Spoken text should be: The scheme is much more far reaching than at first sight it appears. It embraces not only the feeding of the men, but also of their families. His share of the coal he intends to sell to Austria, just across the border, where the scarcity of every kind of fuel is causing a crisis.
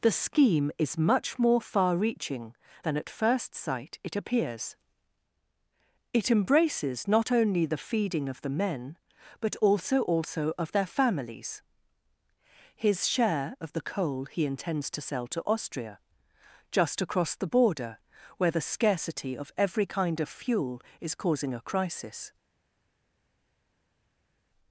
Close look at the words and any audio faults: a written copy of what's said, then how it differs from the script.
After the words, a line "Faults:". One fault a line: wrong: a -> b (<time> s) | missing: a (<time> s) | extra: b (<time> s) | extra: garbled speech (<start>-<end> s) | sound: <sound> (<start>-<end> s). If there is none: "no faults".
The scheme is much more far reaching than at first sight it appears. It embraces not only the feeding of the men, but also also of their families. His share of the coal he intends to sell to Austria, just across the border, where the scarcity of every kind of fuel is causing a crisis.
Faults:
extra: also (10.0 s)